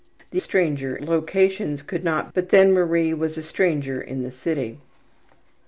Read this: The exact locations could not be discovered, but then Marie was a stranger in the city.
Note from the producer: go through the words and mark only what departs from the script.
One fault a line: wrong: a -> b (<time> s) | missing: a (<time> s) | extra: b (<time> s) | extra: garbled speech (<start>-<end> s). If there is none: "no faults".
wrong: exact -> stranger (0.4 s)
missing: be discovered (2.3 s)